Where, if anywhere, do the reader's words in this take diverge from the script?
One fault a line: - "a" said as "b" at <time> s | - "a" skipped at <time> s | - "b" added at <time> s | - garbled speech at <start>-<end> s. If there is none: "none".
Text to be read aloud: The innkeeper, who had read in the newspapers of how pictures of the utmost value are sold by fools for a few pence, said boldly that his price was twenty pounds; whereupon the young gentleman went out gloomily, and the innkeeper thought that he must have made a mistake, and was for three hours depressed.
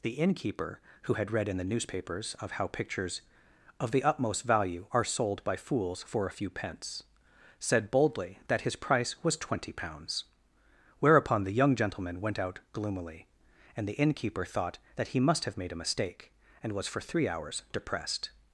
none